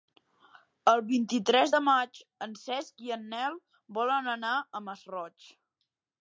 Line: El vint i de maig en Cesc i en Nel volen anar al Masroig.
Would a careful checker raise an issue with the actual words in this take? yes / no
yes